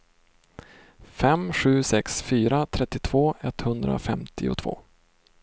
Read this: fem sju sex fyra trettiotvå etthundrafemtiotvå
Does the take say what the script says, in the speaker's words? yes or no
yes